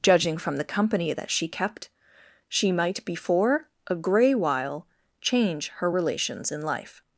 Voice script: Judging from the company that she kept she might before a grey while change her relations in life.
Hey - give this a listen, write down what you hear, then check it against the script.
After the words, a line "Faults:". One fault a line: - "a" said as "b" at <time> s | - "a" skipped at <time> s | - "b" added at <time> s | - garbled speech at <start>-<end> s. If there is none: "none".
Judging from the company that she kept she might before a grey while change her relations in life.
Faults:
none